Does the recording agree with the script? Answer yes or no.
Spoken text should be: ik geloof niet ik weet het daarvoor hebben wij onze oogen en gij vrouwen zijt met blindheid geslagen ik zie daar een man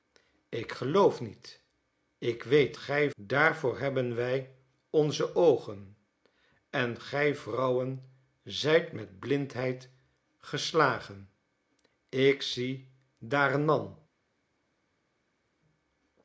no